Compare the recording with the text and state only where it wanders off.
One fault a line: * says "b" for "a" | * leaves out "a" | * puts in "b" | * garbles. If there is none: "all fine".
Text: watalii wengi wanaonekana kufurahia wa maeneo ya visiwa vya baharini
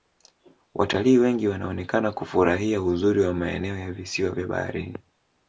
* puts in "uzuri"